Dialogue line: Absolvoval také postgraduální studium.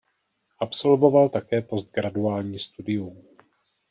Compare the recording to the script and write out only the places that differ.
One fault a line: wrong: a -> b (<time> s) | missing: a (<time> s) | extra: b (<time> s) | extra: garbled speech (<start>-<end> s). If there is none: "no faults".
no faults